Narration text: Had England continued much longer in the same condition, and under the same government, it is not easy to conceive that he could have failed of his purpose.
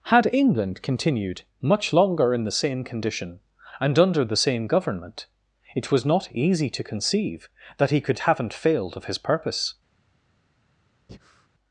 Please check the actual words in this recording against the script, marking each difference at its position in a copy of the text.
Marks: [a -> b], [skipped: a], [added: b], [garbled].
Had England continued much longer in the same condition, and under the same government, it [is -> was] not easy to conceive that he could [have -> haven't] failed of his purpose.